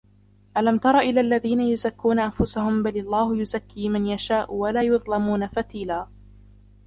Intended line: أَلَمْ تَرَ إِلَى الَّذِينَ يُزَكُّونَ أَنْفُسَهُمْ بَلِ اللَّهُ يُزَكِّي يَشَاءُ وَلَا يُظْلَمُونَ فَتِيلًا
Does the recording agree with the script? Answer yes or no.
no